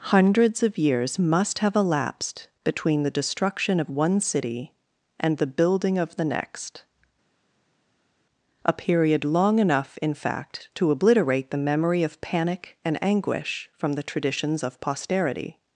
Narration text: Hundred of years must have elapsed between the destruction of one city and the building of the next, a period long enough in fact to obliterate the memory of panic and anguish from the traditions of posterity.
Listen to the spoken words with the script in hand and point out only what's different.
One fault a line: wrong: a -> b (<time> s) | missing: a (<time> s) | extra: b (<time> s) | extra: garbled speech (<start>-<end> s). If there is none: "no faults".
wrong: Hundred -> Hundreds (0.1 s)